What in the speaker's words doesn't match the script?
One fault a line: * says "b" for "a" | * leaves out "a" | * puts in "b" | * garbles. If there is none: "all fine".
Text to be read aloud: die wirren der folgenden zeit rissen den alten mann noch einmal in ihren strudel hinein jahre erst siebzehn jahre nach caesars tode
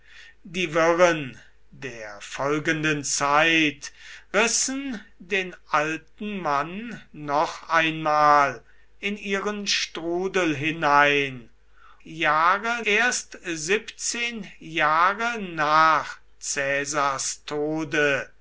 all fine